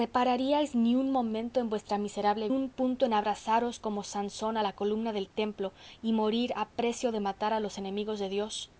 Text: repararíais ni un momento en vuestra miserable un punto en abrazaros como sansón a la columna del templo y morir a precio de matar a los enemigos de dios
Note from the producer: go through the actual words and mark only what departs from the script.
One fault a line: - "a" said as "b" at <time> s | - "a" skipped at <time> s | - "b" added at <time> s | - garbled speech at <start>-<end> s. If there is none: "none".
none